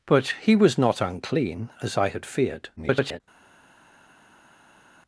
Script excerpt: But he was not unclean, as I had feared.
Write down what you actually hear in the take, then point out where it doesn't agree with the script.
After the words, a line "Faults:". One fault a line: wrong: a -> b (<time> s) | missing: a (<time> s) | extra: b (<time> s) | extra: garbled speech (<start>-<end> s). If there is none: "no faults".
But he was not unclean, as I had feared. [garbled]
Faults:
extra: garbled speech (2.8-3.2 s)